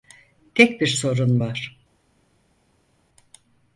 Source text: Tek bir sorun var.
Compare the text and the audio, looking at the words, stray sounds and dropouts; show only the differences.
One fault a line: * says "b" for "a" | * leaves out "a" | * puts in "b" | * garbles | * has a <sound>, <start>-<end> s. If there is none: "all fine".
all fine